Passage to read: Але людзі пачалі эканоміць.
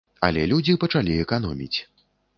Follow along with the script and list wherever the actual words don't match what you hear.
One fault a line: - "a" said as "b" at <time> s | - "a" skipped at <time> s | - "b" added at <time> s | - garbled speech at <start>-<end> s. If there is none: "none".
none